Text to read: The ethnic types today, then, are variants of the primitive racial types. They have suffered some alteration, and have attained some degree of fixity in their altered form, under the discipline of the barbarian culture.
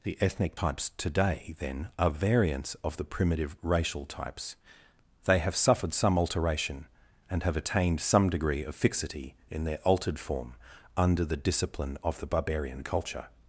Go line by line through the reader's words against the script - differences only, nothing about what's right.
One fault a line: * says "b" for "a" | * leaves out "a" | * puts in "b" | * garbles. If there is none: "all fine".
all fine